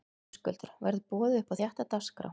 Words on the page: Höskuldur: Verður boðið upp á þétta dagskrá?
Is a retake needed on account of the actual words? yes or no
no